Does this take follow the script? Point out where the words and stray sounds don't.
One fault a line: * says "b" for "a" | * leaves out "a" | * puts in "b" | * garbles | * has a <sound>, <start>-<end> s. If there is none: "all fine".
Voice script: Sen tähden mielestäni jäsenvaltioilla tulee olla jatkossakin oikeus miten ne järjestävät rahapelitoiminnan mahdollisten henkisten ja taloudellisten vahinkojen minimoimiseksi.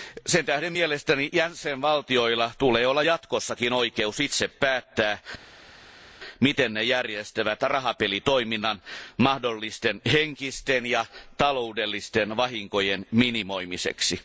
* puts in "itse päättää"